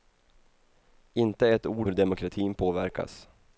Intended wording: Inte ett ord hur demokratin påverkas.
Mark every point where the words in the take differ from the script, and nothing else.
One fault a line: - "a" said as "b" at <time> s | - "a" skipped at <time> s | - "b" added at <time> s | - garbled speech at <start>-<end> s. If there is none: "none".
none